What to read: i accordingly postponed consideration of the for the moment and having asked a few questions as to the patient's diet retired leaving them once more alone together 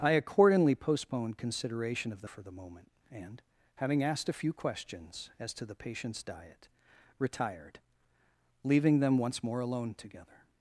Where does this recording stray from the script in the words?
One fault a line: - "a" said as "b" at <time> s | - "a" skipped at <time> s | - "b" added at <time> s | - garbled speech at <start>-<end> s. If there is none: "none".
none